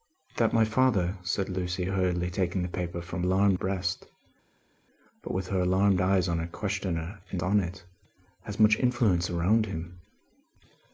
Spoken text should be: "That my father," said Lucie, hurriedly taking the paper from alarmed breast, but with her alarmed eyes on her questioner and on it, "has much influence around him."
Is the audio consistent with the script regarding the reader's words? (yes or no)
yes